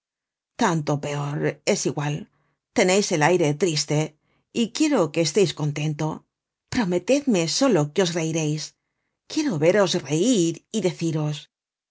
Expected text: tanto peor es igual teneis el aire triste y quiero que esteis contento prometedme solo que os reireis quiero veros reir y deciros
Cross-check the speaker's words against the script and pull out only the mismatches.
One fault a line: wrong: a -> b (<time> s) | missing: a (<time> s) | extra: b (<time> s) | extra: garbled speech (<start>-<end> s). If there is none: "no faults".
no faults